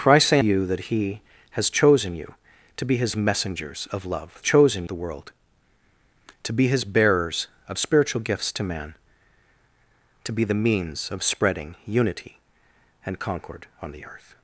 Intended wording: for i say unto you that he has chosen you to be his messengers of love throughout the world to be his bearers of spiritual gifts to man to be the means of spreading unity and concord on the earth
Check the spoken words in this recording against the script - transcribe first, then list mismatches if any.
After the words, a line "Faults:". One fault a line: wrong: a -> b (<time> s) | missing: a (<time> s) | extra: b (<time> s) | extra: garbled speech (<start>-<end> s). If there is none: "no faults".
for i say you that he has chosen you to be his messengers of love chosen the world to be his bearers of spiritual gifts to man to be the means of spreading unity and concord on the earth
Faults:
missing: unto (0.4 s)
wrong: throughout -> chosen (4.4 s)